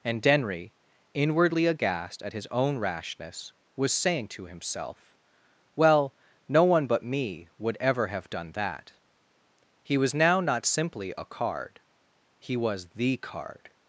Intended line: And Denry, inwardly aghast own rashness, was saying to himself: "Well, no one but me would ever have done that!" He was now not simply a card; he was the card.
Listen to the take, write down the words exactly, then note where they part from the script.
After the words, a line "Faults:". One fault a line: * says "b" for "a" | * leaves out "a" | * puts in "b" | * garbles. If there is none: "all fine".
And Denry, inwardly aghast at his own rashness, was saying to himself: "Well, no one but me would ever have done that!" He was now not simply a card; he was the card.
Faults:
* puts in "at his"